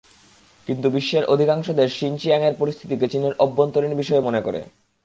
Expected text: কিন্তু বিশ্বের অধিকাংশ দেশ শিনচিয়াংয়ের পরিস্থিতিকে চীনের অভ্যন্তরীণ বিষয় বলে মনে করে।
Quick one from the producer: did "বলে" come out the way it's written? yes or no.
no